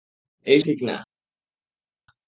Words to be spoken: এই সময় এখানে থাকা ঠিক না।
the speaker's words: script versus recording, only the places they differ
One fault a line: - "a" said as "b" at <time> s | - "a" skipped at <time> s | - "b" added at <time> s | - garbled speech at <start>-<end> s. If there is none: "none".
- "সময় এখানে থাকা" skipped at 0.6 s